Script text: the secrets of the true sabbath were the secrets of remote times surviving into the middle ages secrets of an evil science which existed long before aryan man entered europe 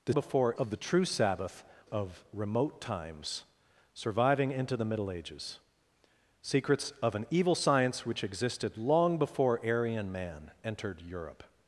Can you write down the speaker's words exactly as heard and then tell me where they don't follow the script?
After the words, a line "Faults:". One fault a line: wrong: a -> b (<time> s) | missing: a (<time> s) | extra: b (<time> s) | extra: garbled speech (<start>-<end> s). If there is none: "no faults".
the before of the true sabbath of remote times surviving into the middle ages secrets of an evil science which existed long before aryan man entered europe
Faults:
wrong: secrets -> before (0.1 s)
missing: were the secrets (1.6 s)